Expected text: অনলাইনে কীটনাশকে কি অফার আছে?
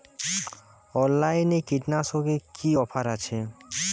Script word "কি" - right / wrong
right